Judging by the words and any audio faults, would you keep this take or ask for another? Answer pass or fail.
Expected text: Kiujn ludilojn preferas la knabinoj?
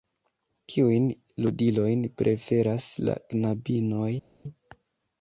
pass